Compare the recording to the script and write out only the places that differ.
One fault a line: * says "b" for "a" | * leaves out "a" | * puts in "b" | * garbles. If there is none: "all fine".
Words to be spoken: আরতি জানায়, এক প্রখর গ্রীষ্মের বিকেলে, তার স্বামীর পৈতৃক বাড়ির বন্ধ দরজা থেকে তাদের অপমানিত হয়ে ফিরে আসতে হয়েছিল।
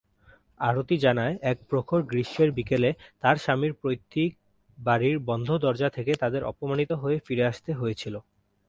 all fine